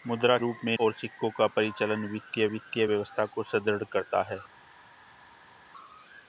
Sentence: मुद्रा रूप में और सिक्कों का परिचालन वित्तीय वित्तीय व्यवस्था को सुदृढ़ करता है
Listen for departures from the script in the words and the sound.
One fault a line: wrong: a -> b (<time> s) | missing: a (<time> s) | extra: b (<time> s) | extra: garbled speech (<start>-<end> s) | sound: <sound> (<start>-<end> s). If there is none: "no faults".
no faults